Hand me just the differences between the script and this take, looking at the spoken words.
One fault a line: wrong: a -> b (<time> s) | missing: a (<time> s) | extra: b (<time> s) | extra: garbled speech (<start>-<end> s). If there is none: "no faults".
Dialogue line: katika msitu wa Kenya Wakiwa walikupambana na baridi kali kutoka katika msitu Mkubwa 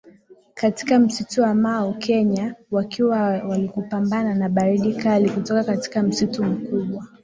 extra: Mau (1.6 s)